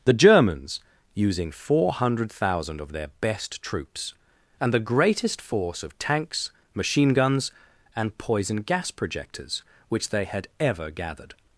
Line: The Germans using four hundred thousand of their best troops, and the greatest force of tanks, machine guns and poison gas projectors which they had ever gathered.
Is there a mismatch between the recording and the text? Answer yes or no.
no